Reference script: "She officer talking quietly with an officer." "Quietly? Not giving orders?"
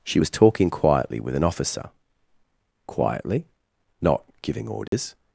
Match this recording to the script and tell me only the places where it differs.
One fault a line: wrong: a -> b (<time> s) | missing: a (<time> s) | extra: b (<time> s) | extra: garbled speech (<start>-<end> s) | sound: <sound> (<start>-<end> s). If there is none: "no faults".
wrong: officer -> was (0.2 s)
sound: dropout (4.9-4.9 s)